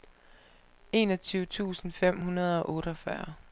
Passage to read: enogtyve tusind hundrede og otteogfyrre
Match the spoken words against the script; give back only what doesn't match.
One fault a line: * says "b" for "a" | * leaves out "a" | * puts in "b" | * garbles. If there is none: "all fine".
* puts in "fem"